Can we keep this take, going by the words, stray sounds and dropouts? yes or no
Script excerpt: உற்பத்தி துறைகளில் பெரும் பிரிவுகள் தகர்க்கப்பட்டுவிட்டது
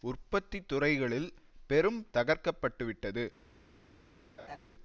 no